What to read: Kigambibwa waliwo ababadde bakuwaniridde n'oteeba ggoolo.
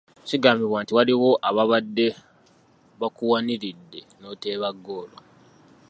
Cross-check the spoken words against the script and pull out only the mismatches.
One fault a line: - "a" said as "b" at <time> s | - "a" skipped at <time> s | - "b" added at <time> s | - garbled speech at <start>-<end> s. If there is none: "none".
- "nti" added at 0.8 s